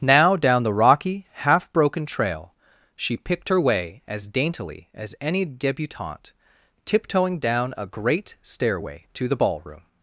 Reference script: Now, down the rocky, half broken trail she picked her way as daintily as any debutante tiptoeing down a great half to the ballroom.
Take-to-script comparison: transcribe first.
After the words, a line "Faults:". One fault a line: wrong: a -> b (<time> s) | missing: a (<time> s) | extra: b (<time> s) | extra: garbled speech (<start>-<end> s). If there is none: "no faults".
Now, down the rocky, half broken trail she picked her way as daintily as any debutante tiptoeing down a great stairway to the ballroom.
Faults:
wrong: half -> stairway (8.4 s)